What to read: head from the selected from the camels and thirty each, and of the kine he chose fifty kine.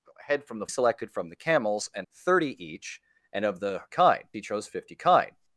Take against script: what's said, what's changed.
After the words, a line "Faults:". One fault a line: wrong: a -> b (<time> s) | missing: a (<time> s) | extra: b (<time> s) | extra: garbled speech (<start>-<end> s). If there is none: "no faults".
head from the selected from the camels and thirty each, and of the kine he chose fifty kine.
Faults:
no faults